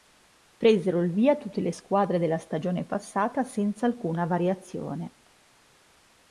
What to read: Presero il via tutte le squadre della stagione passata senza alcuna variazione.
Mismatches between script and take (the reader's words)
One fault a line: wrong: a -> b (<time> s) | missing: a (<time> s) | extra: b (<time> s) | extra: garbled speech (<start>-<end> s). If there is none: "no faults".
no faults